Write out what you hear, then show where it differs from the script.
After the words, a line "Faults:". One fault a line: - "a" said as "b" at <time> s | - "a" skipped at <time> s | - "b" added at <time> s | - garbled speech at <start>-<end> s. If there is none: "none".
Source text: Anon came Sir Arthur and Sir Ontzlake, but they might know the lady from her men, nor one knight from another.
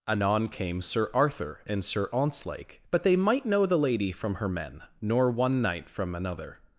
Anon came Sir Arthur and Sir Ontzlake, but they might know the lady from her men, nor one knight from another.
Faults:
none